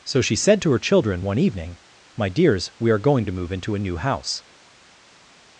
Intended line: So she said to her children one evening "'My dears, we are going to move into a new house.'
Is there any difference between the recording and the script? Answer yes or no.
no